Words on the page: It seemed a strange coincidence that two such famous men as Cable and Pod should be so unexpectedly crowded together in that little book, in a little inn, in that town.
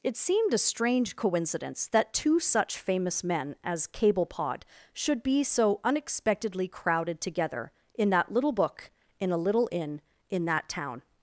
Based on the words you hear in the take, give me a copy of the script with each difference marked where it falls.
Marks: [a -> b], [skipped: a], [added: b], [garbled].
It seemed a strange coincidence that two such famous men as Cable [skipped: and] Pod should be so unexpectedly crowded together in that little book, in a little inn, in that town.